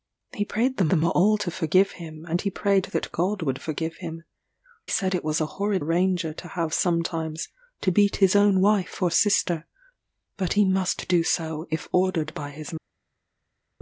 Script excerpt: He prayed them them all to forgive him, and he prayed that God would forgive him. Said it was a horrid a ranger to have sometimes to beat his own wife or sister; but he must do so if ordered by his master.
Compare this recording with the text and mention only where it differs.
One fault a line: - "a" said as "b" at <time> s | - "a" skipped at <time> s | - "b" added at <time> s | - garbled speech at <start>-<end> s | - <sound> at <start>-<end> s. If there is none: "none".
none